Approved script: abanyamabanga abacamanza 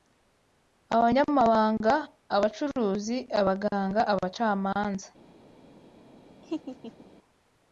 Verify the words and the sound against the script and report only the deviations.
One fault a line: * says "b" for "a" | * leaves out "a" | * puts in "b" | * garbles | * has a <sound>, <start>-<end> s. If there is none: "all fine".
* puts in "abacuruzi abaganga"
* has a laugh, 6.4-7.1 s